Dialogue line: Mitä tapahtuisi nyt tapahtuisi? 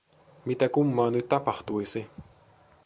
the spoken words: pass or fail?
fail